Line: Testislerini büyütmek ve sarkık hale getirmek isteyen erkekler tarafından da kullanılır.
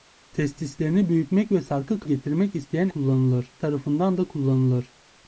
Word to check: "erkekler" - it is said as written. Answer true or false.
false